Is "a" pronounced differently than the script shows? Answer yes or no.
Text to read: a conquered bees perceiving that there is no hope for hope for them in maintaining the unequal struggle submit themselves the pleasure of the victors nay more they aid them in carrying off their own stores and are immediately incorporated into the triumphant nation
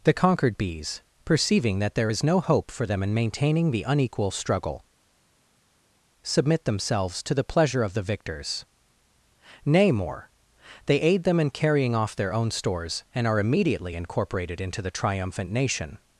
yes